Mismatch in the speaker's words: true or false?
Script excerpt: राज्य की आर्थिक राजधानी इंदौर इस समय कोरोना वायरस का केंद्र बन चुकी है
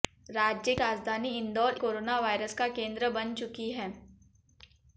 true